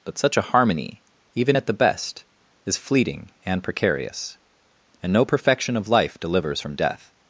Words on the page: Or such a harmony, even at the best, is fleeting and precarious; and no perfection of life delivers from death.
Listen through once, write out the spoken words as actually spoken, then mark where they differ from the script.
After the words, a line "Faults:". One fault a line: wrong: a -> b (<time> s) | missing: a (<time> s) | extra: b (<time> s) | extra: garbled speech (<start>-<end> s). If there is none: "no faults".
But such a harmony, even at the best, is fleeting and precarious; and no perfection of life delivers from death.
Faults:
wrong: Or -> But (0.0 s)